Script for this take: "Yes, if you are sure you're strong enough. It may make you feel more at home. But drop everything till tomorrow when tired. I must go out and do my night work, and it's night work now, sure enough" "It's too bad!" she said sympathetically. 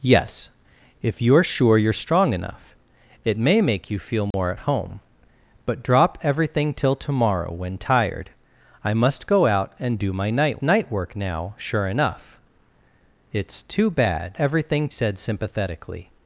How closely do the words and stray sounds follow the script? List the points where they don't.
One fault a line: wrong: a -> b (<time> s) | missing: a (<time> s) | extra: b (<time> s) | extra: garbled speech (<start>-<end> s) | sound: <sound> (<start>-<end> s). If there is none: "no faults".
sound: dropout (4.3-4.3 s)
missing: work and it's (10.6 s)
wrong: she -> everything (14.4 s)